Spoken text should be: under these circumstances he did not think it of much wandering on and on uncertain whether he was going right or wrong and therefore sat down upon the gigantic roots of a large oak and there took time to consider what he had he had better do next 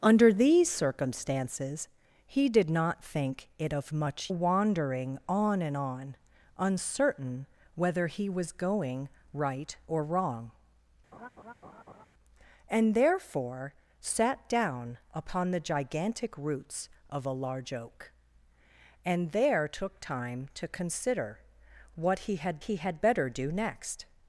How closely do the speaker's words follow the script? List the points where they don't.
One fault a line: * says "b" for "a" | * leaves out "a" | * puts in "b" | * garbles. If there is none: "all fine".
all fine